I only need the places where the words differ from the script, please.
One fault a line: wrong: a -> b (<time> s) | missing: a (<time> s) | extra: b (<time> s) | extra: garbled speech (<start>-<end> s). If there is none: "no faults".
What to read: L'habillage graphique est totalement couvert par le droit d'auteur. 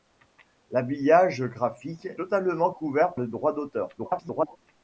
missing: est (2.1 s)
missing: par (3.2 s)
extra: garbled speech (4.0-4.6 s)